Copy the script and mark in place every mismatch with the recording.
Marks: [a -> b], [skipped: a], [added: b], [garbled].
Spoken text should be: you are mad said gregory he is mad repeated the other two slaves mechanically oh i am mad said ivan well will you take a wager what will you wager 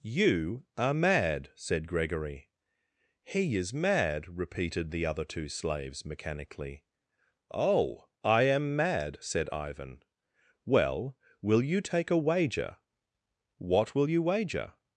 you are mad said gregory he is mad repeated the other two slaves mechanically oh i am mad said ivan well will you take a wager what will you wager